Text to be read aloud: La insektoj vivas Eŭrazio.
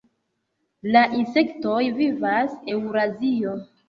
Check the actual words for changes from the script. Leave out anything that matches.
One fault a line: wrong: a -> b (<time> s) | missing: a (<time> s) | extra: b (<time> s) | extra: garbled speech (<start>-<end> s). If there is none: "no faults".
no faults